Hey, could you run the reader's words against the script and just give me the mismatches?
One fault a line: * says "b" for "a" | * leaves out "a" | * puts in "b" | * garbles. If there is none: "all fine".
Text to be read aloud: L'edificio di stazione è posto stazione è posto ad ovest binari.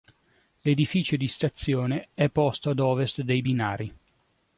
* leaves out "stazione è posto"
* puts in "dei"